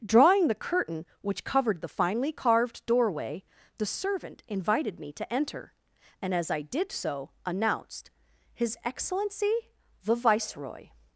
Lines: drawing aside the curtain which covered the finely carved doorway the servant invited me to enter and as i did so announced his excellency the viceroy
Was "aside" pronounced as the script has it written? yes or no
no